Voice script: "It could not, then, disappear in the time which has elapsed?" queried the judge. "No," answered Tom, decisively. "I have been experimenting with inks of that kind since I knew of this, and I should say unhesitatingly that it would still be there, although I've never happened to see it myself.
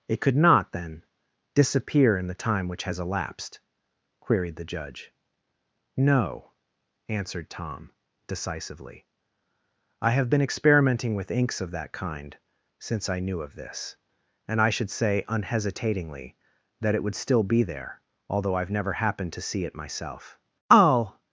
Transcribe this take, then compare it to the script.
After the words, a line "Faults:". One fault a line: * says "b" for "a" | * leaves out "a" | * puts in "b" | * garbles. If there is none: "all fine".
"It could not, then, disappear in the time which has elapsed?" queried the judge. "No," answered Tom, decisively. "I have been experimenting with inks of that kind since I knew of this, and I should say unhesitatingly that it would still be there, although I've never happened to see it myself. I'll
Faults:
* puts in "I'll"